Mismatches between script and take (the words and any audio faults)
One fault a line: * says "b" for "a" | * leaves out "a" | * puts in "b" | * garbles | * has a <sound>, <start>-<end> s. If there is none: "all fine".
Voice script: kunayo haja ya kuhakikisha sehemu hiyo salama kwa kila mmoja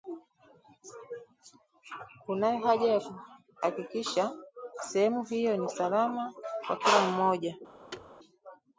* puts in "ni"
* has a thud, 7.9-8.1 s